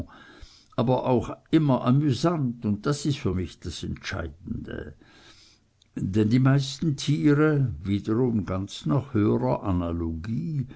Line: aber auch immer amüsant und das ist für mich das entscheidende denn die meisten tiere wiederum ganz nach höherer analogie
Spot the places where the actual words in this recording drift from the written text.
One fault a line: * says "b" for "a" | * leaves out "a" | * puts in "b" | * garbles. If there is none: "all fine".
all fine